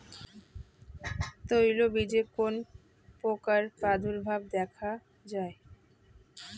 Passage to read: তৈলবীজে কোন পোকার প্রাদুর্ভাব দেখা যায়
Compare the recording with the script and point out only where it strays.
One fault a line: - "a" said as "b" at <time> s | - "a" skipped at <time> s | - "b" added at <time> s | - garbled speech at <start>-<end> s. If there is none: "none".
none